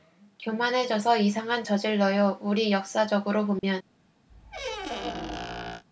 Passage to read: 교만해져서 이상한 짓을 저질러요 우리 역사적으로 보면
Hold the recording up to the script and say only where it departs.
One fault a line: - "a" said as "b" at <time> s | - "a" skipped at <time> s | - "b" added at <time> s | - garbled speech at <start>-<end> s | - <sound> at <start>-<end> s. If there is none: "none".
- "짓을" skipped at 1.6 s
- dropout at 3.6-3.6 s
- squeak at 4.3-5.8 s